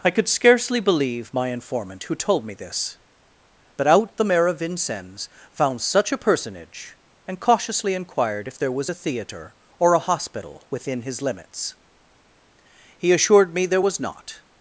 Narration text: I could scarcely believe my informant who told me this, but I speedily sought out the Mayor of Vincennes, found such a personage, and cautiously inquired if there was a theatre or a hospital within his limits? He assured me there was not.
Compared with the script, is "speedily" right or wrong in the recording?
wrong